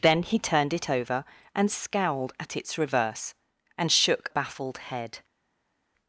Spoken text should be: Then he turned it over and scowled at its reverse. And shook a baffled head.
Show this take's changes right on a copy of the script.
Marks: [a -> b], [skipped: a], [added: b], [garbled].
Then he turned it over and scowled at its reverse. And shook [skipped: a] baffled head.